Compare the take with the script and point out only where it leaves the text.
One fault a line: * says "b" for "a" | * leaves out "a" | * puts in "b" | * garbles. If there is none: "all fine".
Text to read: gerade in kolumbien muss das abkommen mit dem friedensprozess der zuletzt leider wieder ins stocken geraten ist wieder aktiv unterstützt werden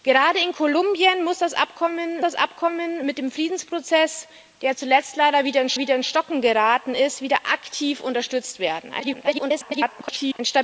* puts in "das abkommen"
* puts in "wieder ins"
* garbles